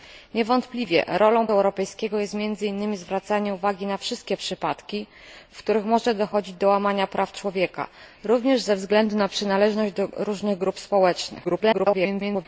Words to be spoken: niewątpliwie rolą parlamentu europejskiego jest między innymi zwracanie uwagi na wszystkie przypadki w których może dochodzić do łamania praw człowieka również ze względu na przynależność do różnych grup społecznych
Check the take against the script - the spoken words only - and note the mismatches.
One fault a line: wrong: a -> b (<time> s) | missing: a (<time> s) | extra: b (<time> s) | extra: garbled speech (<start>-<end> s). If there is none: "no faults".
missing: parlamentu (1.5 s)
extra: garbled speech (11.4-12.5 s)